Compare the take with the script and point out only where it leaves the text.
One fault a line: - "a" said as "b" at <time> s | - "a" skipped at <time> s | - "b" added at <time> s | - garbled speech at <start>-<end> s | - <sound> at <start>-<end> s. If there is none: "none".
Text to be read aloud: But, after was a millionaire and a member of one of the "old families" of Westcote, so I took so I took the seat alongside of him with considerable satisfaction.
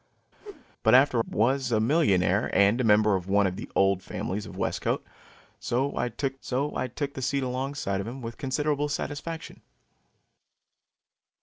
- whoosh at 0.4-0.7 s